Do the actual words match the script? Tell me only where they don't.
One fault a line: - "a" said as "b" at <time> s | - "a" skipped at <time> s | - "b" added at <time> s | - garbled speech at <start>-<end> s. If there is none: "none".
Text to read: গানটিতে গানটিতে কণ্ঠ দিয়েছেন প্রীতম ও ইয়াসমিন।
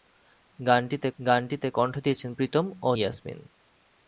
none